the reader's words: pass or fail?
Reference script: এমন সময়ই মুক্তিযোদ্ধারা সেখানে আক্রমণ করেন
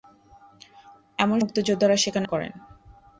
fail